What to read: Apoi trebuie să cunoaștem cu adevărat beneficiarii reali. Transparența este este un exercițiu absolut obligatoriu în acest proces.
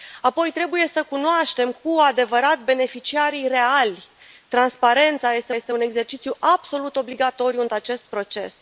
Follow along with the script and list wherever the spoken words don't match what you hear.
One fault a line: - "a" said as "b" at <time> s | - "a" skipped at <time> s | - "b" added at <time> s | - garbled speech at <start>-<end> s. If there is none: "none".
none